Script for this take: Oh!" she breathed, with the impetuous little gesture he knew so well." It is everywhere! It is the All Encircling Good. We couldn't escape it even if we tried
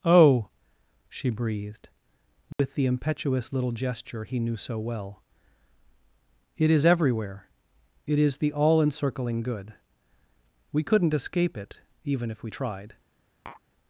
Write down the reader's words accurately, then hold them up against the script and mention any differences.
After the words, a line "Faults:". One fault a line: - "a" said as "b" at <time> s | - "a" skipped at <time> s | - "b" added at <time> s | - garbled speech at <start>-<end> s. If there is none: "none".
Oh!" she breathed, with the impetuous little gesture he knew so well." It is everywhere! It is the All Encircling Good. We couldn't escape it even if we tried
Faults:
none